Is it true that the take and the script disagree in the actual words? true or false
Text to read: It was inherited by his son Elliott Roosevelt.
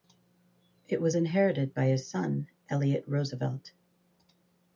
false